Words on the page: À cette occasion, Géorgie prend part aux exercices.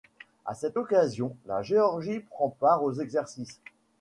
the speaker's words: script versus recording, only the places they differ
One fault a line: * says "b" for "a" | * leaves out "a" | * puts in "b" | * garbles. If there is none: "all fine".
* puts in "la"